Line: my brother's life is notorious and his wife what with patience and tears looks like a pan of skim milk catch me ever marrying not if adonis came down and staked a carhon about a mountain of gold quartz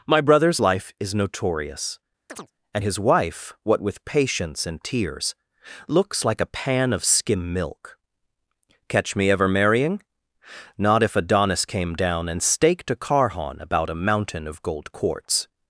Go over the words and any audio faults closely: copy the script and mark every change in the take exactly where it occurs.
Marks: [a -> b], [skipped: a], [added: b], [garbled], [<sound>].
my brother's life is notorious [chirp] and his wife what with patience and tears looks like a pan of skim milk catch me ever marrying not if adonis came down and staked a carhon about a mountain of gold quartz